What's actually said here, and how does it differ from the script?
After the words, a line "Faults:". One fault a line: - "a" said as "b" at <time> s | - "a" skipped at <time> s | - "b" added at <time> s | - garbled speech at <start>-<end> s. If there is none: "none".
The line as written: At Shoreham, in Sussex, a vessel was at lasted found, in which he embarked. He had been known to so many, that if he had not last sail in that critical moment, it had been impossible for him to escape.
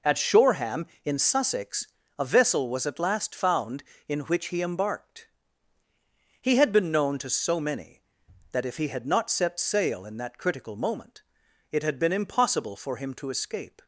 At Shoreham, in Sussex, a vessel was at last found, in which he embarked. He had been known to so many, that if he had not set sail in that critical moment, it had been impossible for him to escape.
Faults:
- "lasted" said as "last" at 3.0 s
- "last" said as "set" at 9.3 s